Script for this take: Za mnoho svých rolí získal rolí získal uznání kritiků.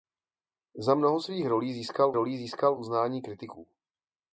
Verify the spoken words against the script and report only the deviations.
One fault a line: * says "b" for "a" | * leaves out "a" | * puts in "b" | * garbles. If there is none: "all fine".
all fine